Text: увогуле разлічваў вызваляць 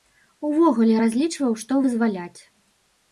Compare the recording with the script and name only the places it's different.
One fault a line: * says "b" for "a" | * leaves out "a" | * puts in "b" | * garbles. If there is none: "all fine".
* puts in "што"